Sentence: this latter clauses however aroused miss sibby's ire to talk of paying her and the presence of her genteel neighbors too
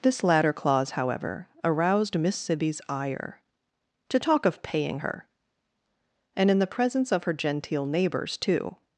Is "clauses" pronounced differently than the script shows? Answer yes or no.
yes